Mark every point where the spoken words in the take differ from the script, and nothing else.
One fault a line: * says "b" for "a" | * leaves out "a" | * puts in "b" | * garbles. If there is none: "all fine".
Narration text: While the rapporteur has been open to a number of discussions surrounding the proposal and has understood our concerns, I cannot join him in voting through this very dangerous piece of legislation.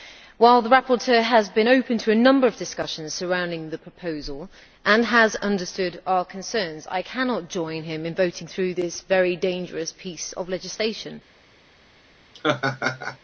all fine